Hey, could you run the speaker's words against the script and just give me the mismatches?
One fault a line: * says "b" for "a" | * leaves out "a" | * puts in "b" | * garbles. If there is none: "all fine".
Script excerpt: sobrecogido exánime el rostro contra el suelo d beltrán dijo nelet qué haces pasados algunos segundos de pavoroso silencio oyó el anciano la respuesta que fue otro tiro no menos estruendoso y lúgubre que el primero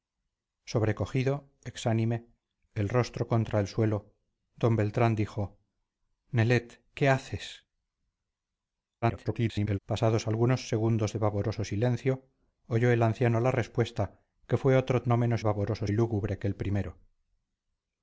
* garbles
* leaves out "tiro"
* says "pavoroso" for "estruendoso"